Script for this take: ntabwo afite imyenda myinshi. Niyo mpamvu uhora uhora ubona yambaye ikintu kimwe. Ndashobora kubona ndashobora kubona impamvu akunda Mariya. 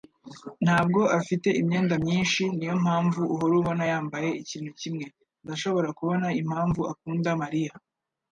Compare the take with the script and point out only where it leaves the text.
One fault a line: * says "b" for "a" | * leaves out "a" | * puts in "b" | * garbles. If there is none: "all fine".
* leaves out "uhora"
* leaves out "ndashobora kubona"